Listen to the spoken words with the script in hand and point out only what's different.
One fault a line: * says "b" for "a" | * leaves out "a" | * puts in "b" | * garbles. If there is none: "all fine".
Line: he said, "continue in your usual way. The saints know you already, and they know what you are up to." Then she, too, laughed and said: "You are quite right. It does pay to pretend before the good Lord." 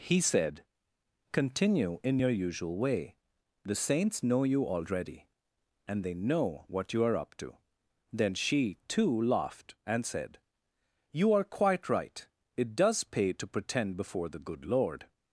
all fine